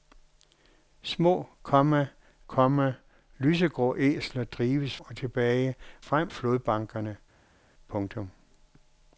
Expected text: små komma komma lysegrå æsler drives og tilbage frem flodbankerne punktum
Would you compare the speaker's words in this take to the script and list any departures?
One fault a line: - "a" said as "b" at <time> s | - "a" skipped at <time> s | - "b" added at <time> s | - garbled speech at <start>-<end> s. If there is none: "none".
none